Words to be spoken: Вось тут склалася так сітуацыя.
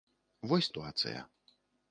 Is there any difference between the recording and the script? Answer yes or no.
yes